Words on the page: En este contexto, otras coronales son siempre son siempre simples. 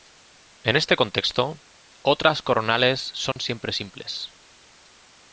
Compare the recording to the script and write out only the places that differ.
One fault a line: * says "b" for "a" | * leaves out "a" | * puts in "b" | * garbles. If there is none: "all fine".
* leaves out "son siempre"